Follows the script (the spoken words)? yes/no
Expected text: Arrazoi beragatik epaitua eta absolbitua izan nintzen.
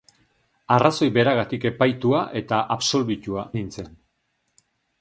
no